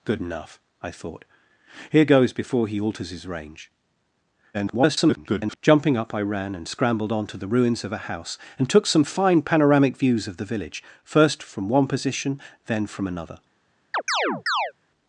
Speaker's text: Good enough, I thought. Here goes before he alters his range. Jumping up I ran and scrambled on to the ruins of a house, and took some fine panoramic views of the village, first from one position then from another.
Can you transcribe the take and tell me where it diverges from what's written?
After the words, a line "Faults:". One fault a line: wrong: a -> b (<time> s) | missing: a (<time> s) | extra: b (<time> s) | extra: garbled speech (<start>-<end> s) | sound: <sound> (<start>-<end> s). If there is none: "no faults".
Good enough, I thought. Here goes before he alters his range. [garbled] Jumping up I ran and scrambled on to the ruins of a house, and took some fine panoramic views of the village, first from one position then from another.
Faults:
extra: garbled speech (4.5-5.6 s)
sound: chirp (13.9-14.7 s)